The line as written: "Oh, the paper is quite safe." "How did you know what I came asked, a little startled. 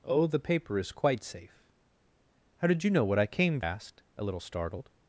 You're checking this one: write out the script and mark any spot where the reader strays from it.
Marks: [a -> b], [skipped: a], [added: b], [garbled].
"Oh, the paper is quite safe." "How did you know what I came asked, a little startled.